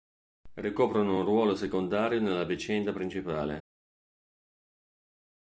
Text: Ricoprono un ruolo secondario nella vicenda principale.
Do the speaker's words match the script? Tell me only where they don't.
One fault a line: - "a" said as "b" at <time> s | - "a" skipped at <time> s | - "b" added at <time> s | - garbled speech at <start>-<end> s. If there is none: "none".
none